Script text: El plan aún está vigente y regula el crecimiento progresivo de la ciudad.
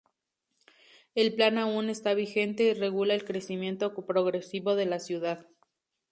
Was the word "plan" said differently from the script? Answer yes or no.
no